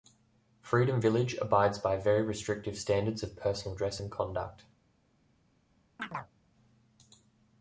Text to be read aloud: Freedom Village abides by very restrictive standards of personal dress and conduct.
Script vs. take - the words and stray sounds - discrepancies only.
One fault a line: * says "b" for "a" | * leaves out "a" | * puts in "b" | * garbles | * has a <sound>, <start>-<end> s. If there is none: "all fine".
* has a chirp, 6.0-6.3 s